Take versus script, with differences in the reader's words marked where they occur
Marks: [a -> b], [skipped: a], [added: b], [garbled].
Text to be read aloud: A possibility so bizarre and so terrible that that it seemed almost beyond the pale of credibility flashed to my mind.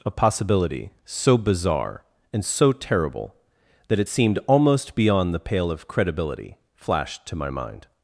A possibility so bizarre and so terrible that [skipped: that] it seemed almost beyond the pale of credibility flashed to my mind.